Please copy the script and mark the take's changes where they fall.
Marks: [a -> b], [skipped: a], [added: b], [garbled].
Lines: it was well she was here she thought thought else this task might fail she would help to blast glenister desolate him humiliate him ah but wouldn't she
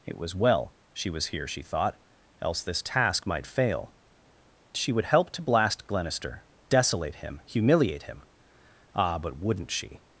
it was well she was here she thought [skipped: thought] else this task might fail she would help to blast glenister desolate him humiliate him ah but wouldn't she